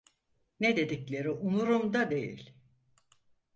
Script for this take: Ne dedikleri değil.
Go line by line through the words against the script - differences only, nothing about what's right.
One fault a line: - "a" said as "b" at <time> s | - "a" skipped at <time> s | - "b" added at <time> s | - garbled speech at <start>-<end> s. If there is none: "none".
- "umurumda" added at 1.3 s